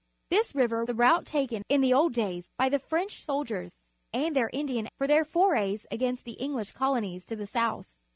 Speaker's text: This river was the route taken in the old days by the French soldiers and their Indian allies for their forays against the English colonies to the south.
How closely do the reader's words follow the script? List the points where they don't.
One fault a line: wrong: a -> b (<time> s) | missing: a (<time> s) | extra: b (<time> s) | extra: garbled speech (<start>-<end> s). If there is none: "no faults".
missing: was (0.8 s)
missing: allies (4.9 s)